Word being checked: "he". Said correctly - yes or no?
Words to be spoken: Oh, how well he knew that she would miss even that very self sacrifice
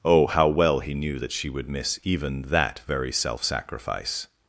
yes